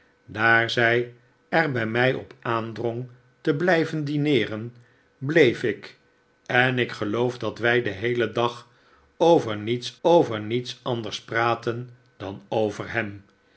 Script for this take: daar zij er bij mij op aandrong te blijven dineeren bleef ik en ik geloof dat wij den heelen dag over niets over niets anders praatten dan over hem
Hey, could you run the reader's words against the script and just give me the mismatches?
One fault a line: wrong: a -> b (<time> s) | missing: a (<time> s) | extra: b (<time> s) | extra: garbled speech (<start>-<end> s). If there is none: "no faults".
no faults